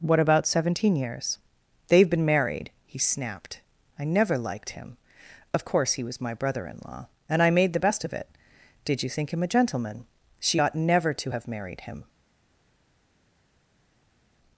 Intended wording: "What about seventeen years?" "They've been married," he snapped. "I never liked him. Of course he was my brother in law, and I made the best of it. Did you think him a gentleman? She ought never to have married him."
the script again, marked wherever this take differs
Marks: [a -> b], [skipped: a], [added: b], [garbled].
"What about seventeen years?" "They've been married," he snapped. "I never liked him. Of course he was my brother in law, and I made the best of it. Did you think him a gentleman? She ought never to have married him."